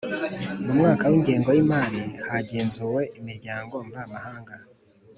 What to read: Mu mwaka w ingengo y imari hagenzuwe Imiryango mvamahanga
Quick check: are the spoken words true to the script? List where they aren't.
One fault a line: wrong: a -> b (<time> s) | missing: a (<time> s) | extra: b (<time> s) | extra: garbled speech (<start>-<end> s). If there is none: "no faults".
no faults